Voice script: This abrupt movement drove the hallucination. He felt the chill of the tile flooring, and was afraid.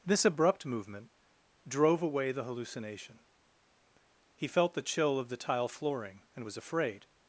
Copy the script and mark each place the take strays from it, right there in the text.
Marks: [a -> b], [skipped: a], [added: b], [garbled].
This abrupt movement drove [added: away] the hallucination. He felt the chill of the tile flooring, and was afraid.